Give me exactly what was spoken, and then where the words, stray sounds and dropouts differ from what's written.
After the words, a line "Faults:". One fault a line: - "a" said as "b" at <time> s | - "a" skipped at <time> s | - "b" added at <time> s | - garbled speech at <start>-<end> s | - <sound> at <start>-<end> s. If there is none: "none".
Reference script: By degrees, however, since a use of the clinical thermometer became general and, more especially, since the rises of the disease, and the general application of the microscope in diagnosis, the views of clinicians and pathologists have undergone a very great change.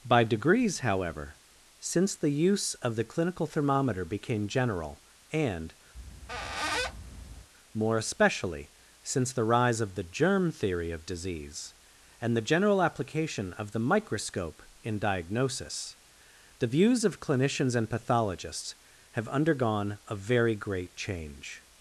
By degrees, however, since the use of the clinical thermometer became general and, more especially, since the rise of the germ theory of disease, and the general application of the microscope in diagnosis, the views of clinicians and pathologists have undergone a very great change.
Faults:
- "a" said as "the" at 2.1 s
- squeak at 5.9-7.5 s
- "rises" said as "rise" at 9.4 s
- "germ theory of" added at 10.0 s